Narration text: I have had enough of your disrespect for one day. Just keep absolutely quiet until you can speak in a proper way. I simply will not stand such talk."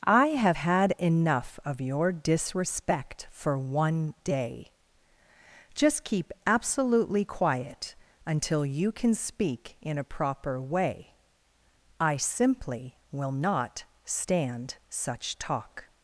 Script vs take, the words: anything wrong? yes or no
no